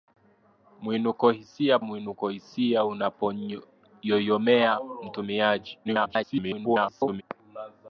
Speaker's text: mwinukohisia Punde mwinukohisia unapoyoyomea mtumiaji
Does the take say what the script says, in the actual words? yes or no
no